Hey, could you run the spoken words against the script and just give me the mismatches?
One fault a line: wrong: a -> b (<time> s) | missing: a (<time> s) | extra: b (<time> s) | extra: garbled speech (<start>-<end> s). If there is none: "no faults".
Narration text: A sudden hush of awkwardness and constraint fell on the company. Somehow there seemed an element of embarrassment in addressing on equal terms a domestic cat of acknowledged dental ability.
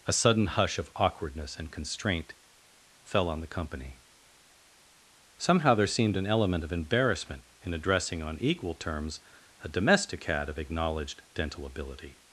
no faults